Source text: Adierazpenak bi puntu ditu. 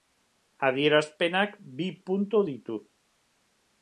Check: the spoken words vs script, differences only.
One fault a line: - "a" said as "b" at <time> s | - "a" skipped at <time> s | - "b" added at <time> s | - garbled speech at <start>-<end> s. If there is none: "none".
none